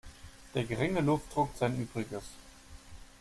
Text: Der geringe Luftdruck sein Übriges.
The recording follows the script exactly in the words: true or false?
true